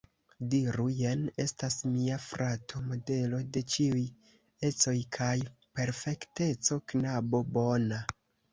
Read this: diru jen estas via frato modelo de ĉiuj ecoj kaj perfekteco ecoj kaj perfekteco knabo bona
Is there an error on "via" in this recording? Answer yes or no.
yes